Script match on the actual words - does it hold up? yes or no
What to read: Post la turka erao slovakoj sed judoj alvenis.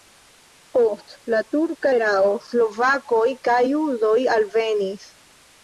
no